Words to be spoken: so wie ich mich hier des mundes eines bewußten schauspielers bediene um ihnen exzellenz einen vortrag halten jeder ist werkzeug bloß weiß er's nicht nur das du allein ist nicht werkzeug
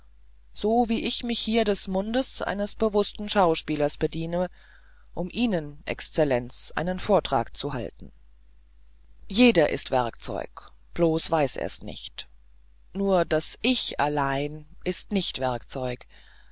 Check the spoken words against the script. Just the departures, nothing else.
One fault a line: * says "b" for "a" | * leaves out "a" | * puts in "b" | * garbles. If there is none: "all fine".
* puts in "zu"
* says "ich" for "du"